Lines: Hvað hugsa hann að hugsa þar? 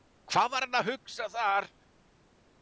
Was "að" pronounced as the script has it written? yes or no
yes